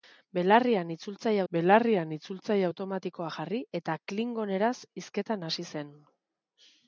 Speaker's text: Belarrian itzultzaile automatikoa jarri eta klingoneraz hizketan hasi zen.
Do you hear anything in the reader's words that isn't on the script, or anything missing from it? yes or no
yes